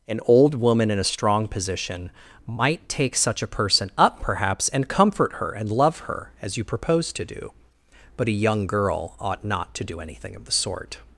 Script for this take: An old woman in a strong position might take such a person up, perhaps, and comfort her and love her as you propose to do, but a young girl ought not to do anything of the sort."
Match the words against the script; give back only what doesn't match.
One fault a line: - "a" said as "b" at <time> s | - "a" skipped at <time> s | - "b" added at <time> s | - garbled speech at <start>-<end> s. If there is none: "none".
none